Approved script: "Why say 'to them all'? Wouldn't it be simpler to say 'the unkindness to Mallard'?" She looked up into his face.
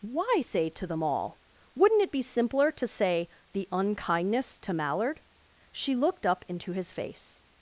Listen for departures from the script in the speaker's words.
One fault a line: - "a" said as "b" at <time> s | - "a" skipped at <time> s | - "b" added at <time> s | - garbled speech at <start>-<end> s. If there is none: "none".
none